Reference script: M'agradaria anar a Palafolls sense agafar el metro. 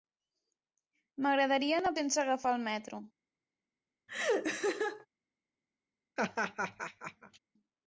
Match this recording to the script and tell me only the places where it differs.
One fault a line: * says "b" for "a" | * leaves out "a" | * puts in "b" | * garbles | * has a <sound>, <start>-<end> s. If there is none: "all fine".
* leaves out "Palafolls"
* has a laugh, 4.1-5.1 s
* has a laugh, 6.2-7.4 s